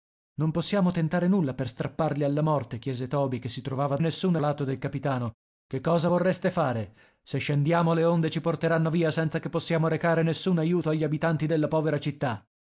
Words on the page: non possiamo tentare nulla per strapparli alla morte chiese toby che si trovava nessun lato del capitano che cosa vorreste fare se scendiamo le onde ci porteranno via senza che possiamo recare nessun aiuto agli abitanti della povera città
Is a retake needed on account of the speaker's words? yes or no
no